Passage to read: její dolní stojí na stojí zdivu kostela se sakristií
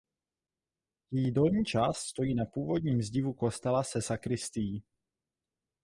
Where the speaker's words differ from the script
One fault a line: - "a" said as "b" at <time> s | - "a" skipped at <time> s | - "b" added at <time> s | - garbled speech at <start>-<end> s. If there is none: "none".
- "část" added at 1.6 s
- "stojí" said as "původním" at 2.5 s